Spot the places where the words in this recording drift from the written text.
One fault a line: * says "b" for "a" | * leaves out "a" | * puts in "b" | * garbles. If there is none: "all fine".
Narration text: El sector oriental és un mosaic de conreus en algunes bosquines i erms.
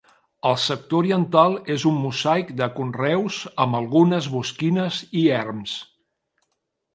* says "amb" for "en"